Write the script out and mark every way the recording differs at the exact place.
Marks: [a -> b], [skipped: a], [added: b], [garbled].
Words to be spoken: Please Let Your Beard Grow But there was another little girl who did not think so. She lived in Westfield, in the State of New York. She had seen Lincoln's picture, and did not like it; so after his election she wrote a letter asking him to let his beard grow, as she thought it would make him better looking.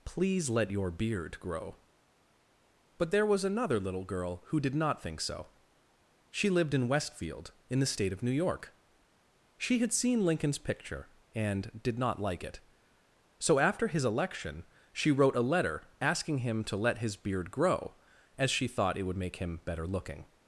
Please Let Your Beard Grow But there was another little girl who did not think so. She lived in Westfield, in the State of New York. She had seen Lincoln's picture, and did not like it; so after his election she wrote a letter asking him to let his beard grow, as she thought it would make him better looking.